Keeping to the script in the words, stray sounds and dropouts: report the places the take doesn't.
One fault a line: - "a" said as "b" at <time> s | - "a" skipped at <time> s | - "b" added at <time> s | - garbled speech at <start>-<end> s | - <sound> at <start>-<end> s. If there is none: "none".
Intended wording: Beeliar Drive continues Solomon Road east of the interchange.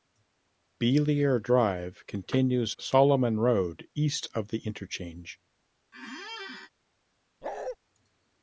- squeak at 5.9-6.7 s
- bark at 7.4-7.8 s